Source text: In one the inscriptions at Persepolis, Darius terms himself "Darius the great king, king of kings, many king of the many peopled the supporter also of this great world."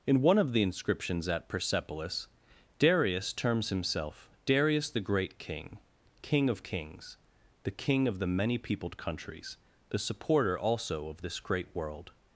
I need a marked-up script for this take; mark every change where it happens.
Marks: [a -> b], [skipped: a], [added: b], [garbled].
In one [added: of] the inscriptions at Persepolis, Darius terms himself "Darius the great king, king of kings, [many -> the] king of the many peopled [added: countries] the supporter also of this great world."